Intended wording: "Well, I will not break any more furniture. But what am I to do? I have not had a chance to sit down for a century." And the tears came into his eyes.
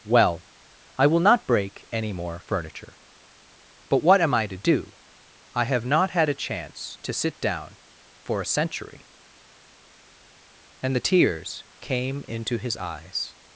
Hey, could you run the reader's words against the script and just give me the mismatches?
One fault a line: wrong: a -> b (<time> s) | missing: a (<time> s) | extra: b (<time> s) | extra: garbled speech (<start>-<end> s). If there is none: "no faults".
no faults